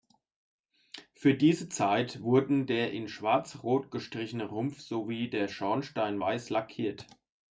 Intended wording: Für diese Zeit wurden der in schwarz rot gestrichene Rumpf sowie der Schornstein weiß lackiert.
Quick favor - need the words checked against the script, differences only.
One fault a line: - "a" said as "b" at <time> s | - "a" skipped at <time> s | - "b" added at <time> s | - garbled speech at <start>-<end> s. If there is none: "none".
none